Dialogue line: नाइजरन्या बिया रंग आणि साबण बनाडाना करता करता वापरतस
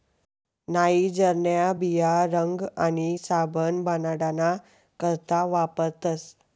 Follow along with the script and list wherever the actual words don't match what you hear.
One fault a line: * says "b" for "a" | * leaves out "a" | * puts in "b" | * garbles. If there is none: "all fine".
* leaves out "करता"